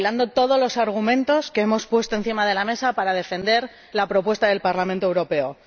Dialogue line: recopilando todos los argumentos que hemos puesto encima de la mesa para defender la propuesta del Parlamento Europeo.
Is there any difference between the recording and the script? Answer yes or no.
no